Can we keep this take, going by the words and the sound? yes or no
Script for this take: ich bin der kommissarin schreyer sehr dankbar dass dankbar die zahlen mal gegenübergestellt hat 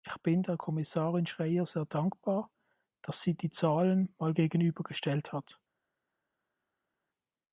no